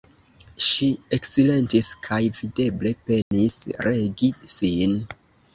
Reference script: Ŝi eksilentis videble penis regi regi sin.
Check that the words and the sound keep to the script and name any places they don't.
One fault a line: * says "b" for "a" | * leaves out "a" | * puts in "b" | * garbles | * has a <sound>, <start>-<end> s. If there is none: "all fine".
* puts in "kaj"
* has a dropout, 3.2-3.3 s
* leaves out "regi"